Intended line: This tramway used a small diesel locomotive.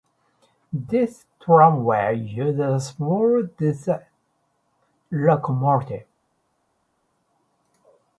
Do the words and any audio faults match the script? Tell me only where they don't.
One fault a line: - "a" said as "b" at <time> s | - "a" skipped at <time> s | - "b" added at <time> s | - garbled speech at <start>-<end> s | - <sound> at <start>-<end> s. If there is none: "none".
none